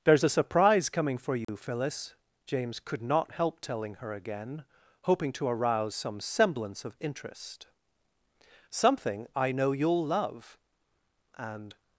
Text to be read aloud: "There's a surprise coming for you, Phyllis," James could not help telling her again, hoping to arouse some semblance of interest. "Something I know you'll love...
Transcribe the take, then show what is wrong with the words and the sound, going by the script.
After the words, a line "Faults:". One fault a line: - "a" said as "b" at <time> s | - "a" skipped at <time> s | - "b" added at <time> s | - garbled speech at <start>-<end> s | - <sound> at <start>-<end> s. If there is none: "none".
"There's a surprise coming for you, Phyllis," James could not help telling her again, hoping to arouse some semblance of interest. "Something I know you'll love... And
Faults:
- dropout at 1.4-1.5 s
- "And" added at 11.4 s